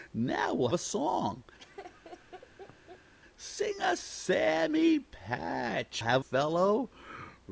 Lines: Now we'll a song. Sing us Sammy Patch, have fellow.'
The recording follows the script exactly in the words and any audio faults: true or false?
false